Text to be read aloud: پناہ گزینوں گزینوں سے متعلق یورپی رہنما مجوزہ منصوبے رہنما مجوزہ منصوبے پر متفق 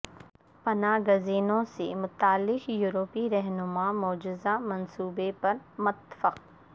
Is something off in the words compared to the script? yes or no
yes